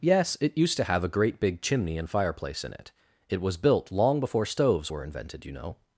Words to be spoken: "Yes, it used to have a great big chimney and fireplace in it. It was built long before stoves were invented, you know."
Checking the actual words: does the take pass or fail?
pass